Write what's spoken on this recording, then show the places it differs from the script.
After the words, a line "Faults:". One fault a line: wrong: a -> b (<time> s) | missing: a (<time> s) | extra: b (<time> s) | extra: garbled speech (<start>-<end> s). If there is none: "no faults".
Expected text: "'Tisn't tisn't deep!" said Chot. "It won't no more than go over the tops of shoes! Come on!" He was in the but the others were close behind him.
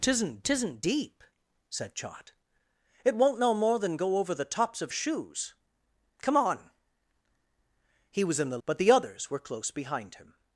"'Tisn't tisn't deep!" said Chot. "It won't no more than go over the tops of shoes! Come on!" He was in the but the others were close behind him.
Faults:
no faults